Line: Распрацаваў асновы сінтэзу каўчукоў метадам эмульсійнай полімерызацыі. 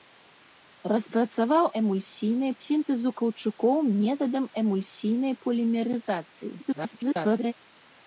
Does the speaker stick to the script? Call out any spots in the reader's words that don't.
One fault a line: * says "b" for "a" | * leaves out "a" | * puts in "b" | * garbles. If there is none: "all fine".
* says "эмульсійнай" for "асновы"
* garbles